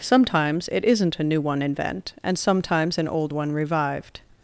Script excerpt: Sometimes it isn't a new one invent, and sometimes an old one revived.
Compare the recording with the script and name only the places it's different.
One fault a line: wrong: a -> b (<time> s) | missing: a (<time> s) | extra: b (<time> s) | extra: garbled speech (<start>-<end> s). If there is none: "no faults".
no faults